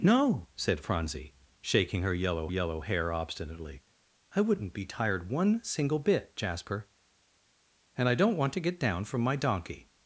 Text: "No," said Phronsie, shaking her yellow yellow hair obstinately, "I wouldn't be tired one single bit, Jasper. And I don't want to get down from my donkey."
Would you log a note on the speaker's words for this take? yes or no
no